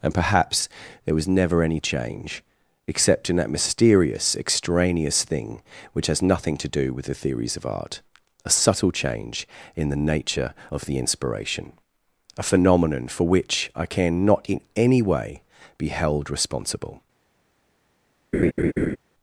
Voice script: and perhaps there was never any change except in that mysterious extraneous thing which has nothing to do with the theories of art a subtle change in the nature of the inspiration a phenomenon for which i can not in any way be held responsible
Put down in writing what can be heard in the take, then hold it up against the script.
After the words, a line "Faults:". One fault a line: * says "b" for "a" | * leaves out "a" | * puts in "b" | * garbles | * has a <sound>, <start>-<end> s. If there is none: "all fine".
and perhaps there was never any change except in that mysterious extraneous thing which has nothing to do with the theories of art a subtle change in the nature of the inspiration a phenomenon for which i can not in any way be held responsible
Faults:
* has a laugh, 18.3-19.0 s